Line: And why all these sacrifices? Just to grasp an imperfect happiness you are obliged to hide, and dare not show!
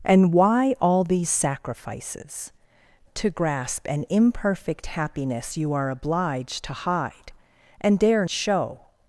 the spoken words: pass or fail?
fail